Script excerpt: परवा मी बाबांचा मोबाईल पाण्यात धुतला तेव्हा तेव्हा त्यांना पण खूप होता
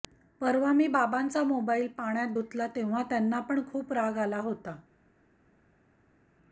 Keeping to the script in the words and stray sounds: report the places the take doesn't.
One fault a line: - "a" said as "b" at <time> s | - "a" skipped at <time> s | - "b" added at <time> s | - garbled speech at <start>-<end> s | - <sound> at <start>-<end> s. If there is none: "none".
- "तेव्हा" skipped at 3.0 s
- "राग आला" added at 3.9 s